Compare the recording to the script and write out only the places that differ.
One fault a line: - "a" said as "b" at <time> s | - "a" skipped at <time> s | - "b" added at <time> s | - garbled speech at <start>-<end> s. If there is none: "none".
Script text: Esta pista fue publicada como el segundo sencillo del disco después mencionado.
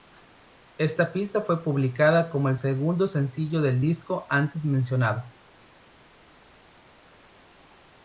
- "después" said as "antes" at 4.3 s